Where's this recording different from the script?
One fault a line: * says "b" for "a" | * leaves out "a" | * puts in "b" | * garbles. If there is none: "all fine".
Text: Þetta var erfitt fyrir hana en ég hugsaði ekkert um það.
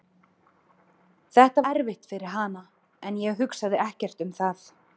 * leaves out "var"